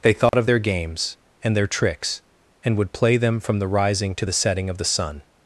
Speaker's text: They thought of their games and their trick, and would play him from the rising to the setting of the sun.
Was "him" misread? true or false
true